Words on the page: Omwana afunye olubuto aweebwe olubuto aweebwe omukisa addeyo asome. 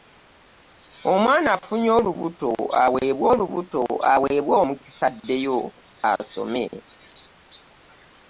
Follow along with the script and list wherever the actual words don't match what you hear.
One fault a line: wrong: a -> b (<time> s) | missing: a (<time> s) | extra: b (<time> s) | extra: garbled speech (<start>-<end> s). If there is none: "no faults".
no faults